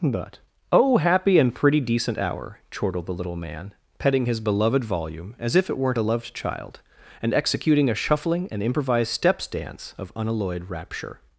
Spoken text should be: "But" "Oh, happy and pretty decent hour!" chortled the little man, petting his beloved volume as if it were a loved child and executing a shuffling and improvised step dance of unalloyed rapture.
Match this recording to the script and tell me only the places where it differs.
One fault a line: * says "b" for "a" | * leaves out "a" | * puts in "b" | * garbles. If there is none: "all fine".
* says "weren't" for "were"
* says "steps" for "step"